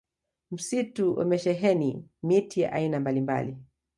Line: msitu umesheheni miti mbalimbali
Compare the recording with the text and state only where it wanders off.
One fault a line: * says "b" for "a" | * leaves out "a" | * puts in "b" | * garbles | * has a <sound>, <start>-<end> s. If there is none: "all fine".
* puts in "ya aina"